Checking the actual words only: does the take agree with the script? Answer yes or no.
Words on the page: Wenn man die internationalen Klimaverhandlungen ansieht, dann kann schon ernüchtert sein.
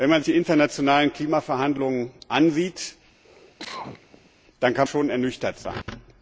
yes